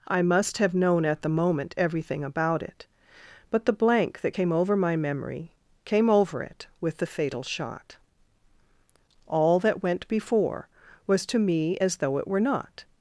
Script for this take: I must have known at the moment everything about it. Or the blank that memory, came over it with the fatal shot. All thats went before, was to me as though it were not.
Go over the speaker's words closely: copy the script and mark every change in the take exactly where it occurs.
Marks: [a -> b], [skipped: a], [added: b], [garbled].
I must have known at the moment everything about it. [Or -> But] the blank that [added: came over my] memory, came over it with the fatal shot. All [thats -> that] went before, was to me as though it were not.